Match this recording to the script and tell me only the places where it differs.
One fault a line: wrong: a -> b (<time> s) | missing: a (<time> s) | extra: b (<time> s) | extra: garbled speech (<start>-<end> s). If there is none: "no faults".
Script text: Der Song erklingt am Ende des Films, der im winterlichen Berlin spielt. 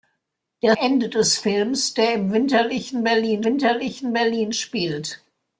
missing: Song erklingt am (0.8 s)
extra: winterlichen Berlin (3.4 s)